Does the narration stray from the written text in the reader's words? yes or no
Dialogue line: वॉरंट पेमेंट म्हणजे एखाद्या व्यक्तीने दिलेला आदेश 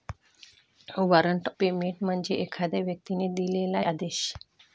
no